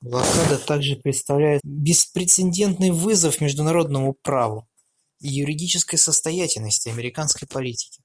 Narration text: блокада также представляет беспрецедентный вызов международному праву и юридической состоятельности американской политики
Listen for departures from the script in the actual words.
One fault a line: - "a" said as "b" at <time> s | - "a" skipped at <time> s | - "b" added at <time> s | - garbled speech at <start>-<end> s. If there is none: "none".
none